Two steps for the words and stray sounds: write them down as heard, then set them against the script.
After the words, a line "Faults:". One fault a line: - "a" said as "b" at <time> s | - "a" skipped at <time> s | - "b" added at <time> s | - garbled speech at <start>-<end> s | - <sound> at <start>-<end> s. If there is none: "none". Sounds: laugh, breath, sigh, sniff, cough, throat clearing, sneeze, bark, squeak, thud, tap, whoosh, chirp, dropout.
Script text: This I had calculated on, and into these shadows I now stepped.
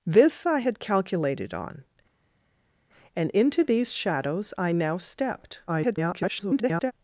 This I had calculated on, and into these shadows I now stepped. [garbled]
Faults:
- garbled speech at 5.7-6.9 s